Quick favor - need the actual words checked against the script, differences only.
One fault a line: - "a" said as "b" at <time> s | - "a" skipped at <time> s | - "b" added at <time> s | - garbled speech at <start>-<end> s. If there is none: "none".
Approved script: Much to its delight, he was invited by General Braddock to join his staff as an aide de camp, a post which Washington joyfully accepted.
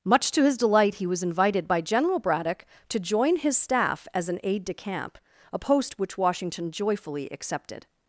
- "its" said as "his" at 0.4 s